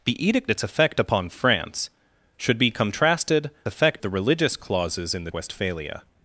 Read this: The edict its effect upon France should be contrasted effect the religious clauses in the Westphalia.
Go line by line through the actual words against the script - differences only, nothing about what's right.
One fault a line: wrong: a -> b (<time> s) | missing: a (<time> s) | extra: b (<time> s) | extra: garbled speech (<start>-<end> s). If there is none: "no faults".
no faults